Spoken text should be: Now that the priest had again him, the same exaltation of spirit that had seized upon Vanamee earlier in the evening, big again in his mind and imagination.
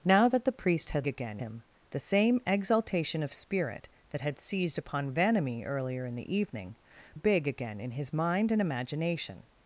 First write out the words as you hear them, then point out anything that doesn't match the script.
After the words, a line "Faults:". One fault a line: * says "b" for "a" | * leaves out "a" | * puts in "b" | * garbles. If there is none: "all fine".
Now that the priest had again him, the same exaltation of spirit that had seized upon Vanamee earlier in the evening, big again in his mind and imagination.
Faults:
all fine